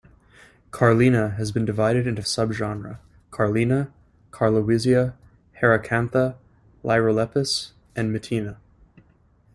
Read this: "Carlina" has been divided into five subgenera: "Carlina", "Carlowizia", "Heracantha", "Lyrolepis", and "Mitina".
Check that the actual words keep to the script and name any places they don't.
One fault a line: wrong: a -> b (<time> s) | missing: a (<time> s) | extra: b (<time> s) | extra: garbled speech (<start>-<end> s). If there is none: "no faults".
missing: five (2.2 s)